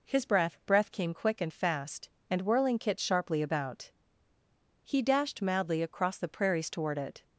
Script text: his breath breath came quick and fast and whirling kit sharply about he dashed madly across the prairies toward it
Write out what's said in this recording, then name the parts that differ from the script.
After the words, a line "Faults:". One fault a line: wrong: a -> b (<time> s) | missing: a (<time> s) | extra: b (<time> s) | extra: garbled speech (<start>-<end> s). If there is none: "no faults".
his breath breath came quick and fast and whirling kit sharply about he dashed madly across the prairies toward it
Faults:
no faults